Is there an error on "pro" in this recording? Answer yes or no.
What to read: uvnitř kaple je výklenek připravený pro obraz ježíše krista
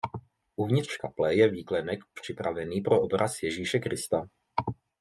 no